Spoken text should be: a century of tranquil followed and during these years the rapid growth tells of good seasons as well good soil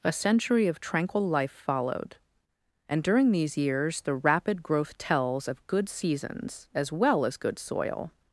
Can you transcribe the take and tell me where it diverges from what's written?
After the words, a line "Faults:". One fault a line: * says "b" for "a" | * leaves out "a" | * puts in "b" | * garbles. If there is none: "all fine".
a century of tranquil life followed and during these years the rapid growth tells of good seasons as well as good soil
Faults:
* puts in "life"
* puts in "as"